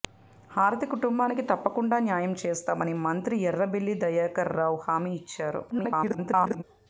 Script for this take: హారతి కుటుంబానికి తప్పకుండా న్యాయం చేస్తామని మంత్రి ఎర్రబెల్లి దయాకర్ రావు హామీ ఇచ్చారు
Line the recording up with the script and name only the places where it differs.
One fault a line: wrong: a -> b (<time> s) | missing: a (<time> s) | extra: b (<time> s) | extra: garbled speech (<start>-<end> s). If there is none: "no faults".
extra: garbled speech (5.7-6.6 s)